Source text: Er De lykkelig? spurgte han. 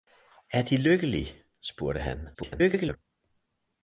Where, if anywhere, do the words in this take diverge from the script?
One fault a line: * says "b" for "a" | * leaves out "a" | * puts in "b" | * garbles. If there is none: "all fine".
* garbles